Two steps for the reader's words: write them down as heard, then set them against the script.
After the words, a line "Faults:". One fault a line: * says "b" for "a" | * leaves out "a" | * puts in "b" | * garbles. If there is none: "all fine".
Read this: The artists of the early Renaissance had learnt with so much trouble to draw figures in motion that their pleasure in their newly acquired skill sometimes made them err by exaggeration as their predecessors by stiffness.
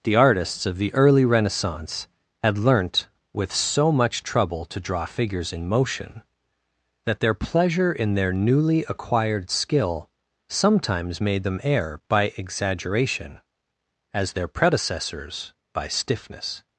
The artists of the early Renaissance had learnt with so much trouble to draw figures in motion that their pleasure in their newly acquired skill sometimes made them err by exaggeration as their predecessors by stiffness.
Faults:
all fine